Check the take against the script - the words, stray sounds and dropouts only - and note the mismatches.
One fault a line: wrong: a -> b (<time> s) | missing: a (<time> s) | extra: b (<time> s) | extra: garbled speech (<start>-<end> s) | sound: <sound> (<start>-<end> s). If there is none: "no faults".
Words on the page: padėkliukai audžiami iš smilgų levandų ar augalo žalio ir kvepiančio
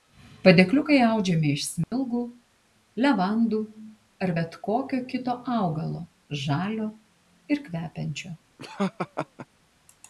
sound: dropout (1.8-1.9 s)
extra: bet kokio kito (4.3 s)
sound: laugh (8.6-9.5 s)